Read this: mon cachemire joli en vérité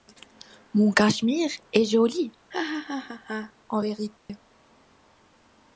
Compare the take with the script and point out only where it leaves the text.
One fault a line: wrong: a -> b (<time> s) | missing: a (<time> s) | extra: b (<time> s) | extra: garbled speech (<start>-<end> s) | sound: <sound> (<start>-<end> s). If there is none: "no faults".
extra: est (1.7 s)
sound: laugh (2.5-3.5 s)
sound: dropout (4.2-4.3 s)